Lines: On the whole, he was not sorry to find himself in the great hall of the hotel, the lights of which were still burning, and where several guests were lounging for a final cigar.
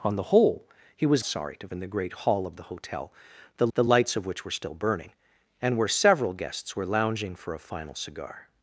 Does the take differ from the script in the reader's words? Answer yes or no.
yes